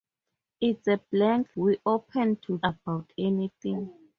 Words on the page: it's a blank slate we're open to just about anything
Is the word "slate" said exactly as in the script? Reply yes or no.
no